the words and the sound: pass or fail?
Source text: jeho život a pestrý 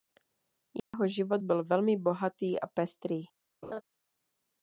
fail